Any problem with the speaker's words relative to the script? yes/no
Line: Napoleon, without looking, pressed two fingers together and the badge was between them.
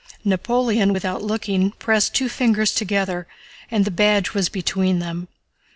no